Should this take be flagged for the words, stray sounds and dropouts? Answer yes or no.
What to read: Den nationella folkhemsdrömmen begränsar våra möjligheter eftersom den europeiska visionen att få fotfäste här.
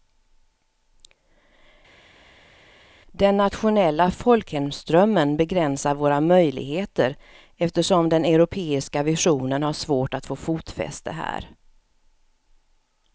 yes